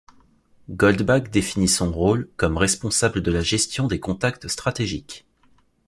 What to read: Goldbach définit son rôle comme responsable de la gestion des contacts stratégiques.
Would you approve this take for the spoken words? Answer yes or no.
yes